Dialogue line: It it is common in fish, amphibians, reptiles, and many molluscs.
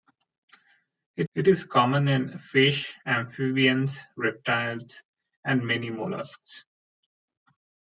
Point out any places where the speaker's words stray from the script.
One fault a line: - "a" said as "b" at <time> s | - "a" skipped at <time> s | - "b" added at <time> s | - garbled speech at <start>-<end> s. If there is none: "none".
none